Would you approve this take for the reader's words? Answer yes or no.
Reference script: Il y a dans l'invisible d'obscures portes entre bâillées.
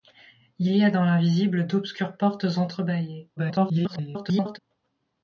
no